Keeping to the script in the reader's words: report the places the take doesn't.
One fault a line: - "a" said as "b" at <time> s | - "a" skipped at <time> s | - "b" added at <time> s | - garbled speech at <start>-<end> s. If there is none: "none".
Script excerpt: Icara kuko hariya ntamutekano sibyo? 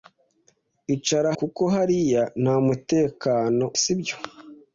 none